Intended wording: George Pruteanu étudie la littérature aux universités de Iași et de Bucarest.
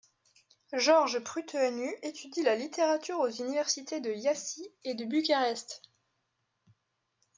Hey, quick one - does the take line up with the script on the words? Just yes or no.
yes